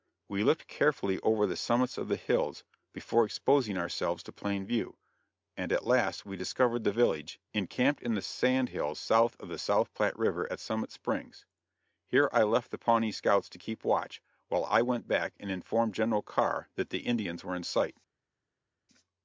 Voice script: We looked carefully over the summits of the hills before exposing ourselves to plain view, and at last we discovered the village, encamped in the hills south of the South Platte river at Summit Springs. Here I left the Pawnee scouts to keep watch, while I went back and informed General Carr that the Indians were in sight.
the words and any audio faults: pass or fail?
fail